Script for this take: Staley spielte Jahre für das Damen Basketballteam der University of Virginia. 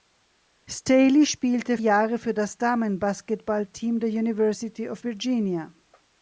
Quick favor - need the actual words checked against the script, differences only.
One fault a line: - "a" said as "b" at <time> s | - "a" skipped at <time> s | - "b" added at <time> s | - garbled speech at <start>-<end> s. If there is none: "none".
none